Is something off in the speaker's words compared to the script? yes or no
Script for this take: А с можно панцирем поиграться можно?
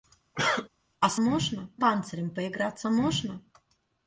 no